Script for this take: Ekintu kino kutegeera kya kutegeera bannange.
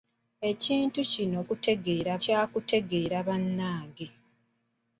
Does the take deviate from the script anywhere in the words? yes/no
no